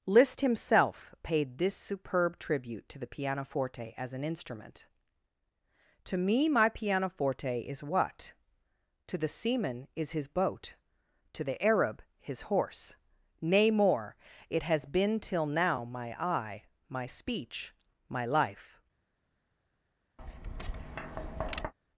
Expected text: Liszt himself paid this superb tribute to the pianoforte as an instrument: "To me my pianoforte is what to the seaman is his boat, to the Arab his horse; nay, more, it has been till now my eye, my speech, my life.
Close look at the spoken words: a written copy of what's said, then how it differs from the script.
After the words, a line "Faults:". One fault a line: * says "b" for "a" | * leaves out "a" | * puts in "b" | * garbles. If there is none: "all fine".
Liszt himself paid this superb tribute to the pianoforte as an instrument: "To me my pianoforte is what to the seaman is his boat, to the Arab his horse; nay, more, it has been till now my eye, my speech, my life.
Faults:
all fine